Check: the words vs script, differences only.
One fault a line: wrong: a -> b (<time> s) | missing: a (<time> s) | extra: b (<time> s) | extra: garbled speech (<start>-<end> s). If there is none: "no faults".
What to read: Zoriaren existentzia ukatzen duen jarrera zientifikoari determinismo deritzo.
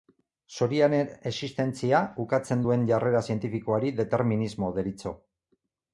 no faults